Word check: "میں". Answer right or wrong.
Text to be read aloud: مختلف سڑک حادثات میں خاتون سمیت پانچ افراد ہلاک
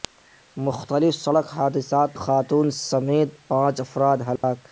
wrong